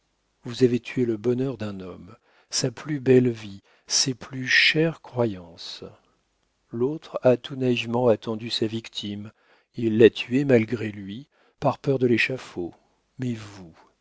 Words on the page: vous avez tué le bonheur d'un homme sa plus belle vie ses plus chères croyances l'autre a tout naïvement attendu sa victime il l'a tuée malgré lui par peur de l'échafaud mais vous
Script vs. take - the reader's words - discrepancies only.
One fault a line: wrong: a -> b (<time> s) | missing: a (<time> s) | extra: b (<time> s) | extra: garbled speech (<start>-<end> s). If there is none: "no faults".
no faults